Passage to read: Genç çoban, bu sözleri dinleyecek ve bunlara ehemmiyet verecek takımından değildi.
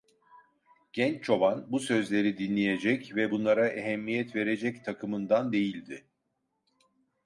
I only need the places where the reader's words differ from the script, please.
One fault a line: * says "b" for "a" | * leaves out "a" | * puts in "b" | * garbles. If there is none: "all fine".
all fine